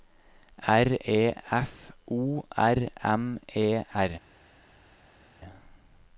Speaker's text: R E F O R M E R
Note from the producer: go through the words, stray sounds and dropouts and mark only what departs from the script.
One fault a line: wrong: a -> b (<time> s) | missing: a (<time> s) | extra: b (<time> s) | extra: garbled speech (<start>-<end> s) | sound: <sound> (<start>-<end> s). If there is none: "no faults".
no faults